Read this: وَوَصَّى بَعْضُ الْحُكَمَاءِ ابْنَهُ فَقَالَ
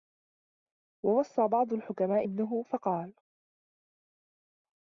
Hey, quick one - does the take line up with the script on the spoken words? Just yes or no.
yes